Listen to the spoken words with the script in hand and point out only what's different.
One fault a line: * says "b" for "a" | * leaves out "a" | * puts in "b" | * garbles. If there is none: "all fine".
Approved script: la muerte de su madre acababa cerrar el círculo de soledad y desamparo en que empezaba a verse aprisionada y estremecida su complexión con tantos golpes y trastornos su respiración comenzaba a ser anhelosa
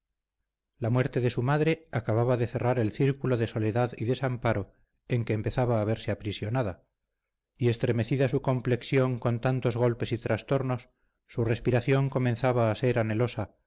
* puts in "de"